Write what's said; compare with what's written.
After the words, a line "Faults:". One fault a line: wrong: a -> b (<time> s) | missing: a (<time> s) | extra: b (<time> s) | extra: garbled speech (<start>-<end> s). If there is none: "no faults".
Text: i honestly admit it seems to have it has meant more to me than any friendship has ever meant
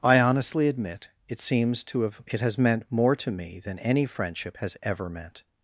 i honestly admit it seems to have it has meant more to me than any friendship has ever meant
Faults:
no faults